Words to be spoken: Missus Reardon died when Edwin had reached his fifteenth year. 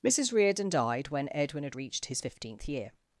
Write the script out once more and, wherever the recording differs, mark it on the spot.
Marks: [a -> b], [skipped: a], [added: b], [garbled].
Missus Reardon died when Edwin had reached his fifteenth year.